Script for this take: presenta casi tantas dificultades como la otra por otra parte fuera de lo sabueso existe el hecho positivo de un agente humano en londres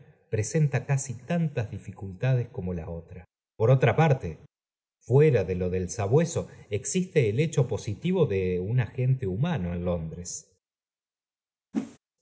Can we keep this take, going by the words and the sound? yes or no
no